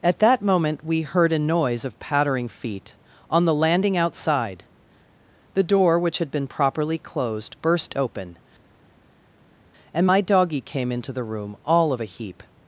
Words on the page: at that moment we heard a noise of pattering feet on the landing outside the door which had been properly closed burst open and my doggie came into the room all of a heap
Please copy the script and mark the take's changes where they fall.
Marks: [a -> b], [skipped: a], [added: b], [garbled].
at that moment we heard a noise of pattering feet on the landing outside the door which had been properly closed burst open and my doggie came into the room all of a heap